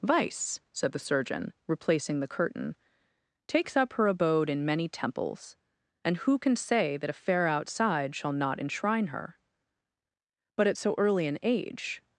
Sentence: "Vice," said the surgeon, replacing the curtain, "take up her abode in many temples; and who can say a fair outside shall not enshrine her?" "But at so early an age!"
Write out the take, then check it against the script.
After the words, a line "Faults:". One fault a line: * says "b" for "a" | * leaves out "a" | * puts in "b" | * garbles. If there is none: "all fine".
"Vice," said the surgeon, replacing the curtain, "takes up her abode in many temples; and who can say that a fair outside shall not enshrine her?" "But at so early an age!"
Faults:
* says "takes" for "take"
* puts in "that"